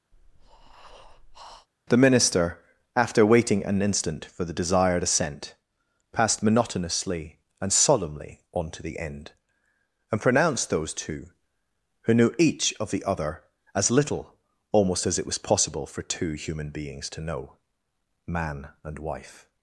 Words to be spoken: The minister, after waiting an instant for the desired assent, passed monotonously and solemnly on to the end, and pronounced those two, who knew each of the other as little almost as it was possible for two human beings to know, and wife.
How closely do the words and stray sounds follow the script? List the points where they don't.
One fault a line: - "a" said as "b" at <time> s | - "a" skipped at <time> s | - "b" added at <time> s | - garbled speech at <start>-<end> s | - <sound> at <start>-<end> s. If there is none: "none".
- breath at 0.1-1.7 s
- "man" added at 18.3 s